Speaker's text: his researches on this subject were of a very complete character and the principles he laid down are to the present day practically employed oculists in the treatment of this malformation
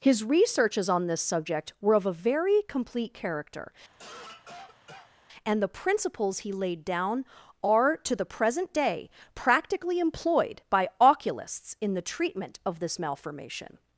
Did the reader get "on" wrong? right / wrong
right